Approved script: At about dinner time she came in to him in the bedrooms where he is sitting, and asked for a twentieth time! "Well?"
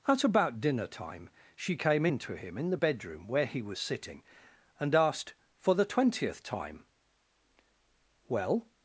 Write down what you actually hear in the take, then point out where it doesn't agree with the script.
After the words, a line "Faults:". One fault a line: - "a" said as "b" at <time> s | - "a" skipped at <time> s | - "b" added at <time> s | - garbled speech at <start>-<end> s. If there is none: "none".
At about dinner time she came in to him in the bedroom where he was sitting, and asked for the twentieth time! "Well?"
Faults:
- "bedrooms" said as "bedroom" at 2.7 s
- "is" said as "was" at 3.6 s
- "a" said as "the" at 5.7 s